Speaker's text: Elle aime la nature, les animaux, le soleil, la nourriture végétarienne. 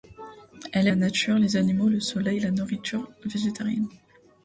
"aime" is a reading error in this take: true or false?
true